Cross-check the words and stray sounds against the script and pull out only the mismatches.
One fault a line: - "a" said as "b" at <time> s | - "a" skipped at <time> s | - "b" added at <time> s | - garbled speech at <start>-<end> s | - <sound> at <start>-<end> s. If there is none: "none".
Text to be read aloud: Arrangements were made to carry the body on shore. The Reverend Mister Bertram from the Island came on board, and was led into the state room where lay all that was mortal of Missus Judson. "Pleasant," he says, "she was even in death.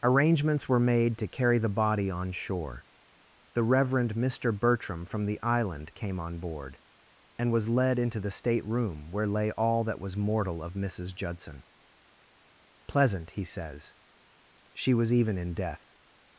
none